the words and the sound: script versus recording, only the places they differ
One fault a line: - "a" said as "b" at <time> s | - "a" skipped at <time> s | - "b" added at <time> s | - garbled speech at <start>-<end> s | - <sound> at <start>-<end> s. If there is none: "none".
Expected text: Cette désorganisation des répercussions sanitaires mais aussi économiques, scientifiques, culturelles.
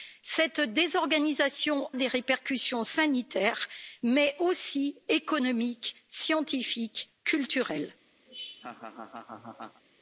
- laugh at 8.3-9.8 s